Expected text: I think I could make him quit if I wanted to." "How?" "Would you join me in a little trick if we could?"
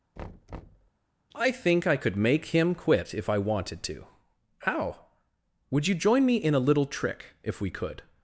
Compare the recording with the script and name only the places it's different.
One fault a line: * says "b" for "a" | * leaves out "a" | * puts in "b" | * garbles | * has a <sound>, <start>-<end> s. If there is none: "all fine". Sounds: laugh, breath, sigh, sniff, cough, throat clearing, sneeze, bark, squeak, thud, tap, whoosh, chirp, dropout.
* has a thud, 0.2-0.9 s